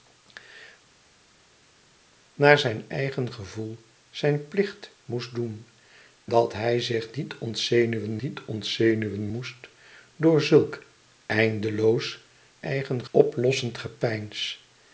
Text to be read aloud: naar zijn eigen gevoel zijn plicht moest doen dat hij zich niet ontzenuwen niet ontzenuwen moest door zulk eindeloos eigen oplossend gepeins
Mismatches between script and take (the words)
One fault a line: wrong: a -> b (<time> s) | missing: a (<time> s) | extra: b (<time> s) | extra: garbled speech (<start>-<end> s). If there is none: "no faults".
no faults